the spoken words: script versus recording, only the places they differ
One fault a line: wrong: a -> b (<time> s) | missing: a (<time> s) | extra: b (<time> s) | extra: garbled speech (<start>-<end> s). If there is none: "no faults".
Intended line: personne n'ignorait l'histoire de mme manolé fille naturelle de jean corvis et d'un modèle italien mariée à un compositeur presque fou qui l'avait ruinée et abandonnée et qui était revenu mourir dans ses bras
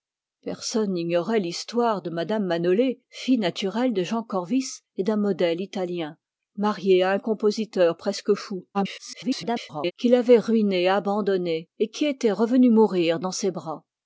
extra: garbled speech (8.7-9.9 s)